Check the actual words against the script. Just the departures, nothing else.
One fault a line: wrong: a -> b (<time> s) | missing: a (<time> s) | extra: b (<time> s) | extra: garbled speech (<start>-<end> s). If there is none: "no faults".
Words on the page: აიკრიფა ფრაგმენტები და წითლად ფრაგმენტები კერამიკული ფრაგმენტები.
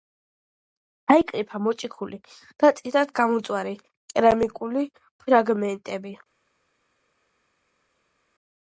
wrong: ფრაგმენტები -> მოჭიქული (1.6 s)
wrong: ფრაგმენტები -> გამომწვარი (3.2 s)